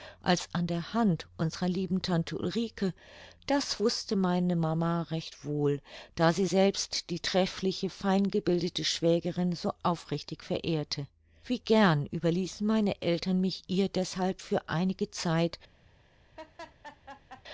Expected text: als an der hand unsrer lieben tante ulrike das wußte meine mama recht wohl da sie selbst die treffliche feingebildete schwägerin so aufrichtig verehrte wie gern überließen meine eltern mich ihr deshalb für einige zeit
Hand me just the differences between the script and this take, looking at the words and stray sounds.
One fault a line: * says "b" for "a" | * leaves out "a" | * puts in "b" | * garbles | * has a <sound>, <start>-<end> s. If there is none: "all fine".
* has a laugh, 16.4-17.4 s